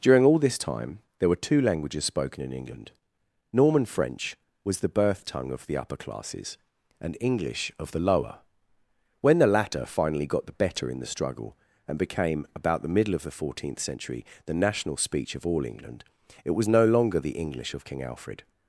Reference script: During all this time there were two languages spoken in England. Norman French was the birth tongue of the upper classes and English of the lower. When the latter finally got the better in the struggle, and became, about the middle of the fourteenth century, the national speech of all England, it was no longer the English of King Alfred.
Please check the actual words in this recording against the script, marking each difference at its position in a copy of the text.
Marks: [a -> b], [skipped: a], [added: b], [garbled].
During all this time there were two languages spoken in England. Norman French was the birth tongue of the upper classes and English of the lower. When the latter finally got the better in the struggle, and became, about the middle of the fourteenth century, the national speech of all England, it was no longer the English of King Alfred.